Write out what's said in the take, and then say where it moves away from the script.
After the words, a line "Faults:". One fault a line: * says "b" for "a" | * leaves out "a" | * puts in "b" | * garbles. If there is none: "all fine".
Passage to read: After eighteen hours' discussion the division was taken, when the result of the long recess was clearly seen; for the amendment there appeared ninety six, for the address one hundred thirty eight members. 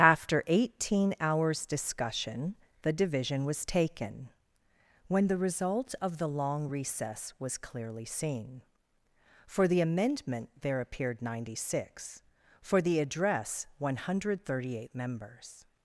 After eighteen hours' discussion the division was taken, when the result of the long recess was clearly seen; for the amendment there appeared ninety six, for the address one hundred thirty eight members.
Faults:
all fine